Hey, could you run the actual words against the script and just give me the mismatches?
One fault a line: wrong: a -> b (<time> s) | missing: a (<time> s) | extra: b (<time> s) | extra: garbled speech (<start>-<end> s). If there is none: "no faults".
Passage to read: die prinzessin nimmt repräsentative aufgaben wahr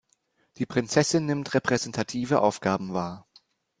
no faults